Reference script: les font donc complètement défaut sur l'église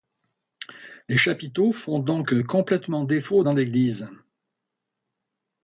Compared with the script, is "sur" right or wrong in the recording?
wrong